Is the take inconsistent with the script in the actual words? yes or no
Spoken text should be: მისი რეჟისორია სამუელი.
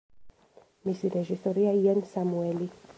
yes